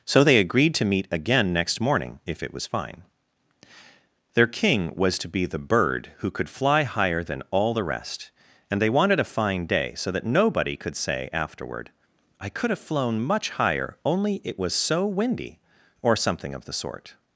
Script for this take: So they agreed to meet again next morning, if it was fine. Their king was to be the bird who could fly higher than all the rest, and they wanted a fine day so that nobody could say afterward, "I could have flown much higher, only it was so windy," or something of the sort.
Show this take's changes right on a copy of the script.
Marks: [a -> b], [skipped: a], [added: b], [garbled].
So they agreed to meet again next morning, if it was fine. Their king was to be the bird who could fly higher than all the rest, and they wanted a fine day so that nobody could say afterward, "I could have flown much higher, only it was so windy," or something of the sort.